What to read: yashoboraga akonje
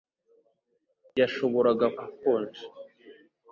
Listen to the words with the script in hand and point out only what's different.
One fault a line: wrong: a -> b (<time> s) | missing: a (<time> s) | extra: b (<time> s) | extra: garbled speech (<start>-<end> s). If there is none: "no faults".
no faults